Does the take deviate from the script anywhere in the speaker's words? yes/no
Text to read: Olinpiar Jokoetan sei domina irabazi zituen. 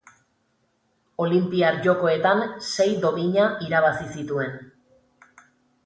no